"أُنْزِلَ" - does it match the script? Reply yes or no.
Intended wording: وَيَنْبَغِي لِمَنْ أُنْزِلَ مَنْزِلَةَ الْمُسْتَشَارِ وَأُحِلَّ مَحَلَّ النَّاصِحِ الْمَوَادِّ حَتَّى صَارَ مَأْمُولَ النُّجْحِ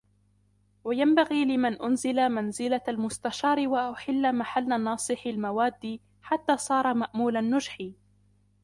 yes